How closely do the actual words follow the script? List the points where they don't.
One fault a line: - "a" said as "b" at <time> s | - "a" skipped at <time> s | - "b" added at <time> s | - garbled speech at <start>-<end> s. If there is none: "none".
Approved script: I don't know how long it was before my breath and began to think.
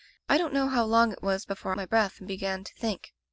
none